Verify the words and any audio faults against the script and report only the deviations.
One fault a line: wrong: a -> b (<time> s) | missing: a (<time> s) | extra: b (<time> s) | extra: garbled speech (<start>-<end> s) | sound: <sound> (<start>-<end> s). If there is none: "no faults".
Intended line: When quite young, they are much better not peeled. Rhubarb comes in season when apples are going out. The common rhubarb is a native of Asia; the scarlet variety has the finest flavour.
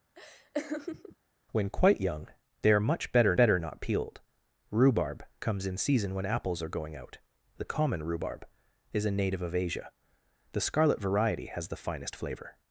sound: laugh (0.1-1.2 s)
extra: better (3.4 s)